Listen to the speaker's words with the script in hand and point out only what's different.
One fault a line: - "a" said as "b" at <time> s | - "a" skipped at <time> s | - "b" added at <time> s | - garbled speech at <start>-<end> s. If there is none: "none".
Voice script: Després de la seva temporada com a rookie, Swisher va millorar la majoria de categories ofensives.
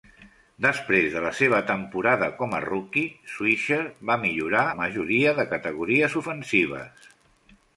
none